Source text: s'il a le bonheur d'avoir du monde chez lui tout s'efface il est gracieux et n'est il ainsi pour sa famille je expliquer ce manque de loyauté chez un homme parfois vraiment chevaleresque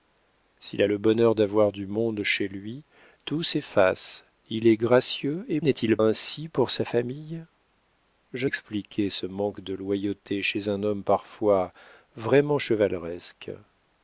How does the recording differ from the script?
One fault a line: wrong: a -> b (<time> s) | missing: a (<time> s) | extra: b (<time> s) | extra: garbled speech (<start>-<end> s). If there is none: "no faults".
no faults